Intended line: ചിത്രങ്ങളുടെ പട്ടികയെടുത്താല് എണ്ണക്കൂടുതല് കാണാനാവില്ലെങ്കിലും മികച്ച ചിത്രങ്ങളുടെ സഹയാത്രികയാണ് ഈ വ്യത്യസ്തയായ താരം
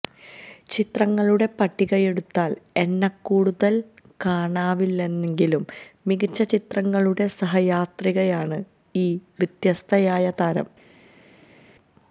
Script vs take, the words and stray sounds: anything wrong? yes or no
no